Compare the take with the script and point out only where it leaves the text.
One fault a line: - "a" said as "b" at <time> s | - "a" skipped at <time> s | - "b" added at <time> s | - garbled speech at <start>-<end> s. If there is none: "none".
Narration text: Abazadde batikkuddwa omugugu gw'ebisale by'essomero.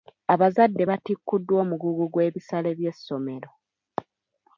none